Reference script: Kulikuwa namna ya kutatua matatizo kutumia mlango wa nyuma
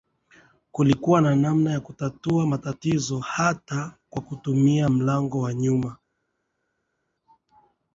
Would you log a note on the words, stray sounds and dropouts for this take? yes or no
yes